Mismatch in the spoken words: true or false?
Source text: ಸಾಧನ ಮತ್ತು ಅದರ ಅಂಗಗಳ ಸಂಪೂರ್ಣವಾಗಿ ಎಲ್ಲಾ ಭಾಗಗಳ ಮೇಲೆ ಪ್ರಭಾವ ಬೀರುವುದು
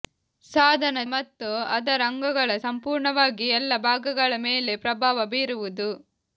false